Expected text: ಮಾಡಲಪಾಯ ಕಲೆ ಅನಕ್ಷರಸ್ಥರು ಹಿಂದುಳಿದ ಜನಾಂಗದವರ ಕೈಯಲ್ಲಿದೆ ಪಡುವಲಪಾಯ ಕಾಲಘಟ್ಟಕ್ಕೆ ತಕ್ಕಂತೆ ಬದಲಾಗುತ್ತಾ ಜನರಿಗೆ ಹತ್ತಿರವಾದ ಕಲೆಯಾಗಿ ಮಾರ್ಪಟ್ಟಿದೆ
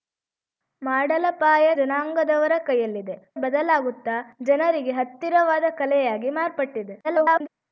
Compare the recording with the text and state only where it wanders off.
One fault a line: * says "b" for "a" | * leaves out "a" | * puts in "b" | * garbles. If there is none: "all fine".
* leaves out "ಕಲೆ ಅನಕ್ಷರಸ್ಥರು ಹಿಂದುಳಿದ"
* leaves out "ಪಡುವಲಪಾಯ ಕಾಲಘಟ್ಟಕ್ಕೆ ತಕ್ಕಂತೆ"
* garbles